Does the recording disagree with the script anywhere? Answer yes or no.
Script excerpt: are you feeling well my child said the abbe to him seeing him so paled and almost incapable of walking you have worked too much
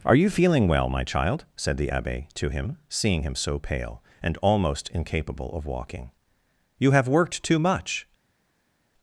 yes